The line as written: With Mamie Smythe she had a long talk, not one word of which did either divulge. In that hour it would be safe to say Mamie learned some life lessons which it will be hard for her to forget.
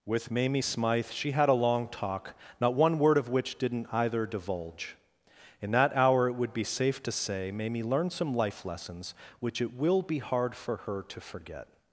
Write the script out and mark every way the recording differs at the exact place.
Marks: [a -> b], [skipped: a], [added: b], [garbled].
With Mamie Smythe she had a long talk, not one word of which [did -> didn't] either divulge. In that hour it would be safe to say Mamie learned some life lessons which it will be hard for her to forget.